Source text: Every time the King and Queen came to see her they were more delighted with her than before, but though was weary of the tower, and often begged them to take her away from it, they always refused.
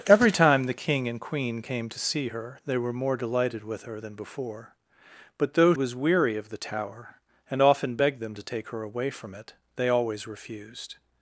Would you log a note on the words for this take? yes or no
no